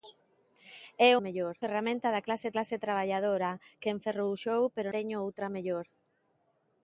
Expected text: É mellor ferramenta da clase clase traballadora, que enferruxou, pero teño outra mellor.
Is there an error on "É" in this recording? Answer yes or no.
no